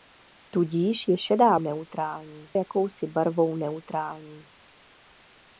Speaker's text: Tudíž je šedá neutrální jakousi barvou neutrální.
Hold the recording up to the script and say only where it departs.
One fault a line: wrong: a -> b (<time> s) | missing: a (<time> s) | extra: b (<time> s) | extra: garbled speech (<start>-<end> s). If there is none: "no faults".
no faults